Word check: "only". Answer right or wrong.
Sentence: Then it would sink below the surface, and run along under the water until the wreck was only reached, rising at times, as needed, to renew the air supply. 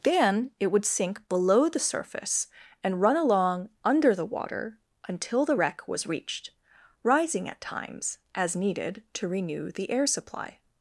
wrong